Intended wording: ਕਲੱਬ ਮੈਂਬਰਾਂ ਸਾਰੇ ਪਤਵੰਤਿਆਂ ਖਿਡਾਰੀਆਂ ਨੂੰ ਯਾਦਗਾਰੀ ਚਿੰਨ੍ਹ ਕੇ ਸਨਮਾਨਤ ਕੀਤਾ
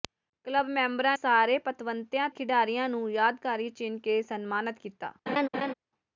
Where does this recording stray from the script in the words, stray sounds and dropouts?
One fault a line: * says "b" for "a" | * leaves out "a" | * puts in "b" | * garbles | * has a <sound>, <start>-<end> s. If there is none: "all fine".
* has a laugh, 5.3-5.7 s